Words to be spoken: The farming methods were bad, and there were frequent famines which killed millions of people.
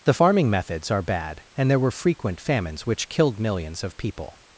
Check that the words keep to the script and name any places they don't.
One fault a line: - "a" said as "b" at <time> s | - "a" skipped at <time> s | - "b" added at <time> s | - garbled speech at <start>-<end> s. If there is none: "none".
- "were" said as "are" at 0.9 s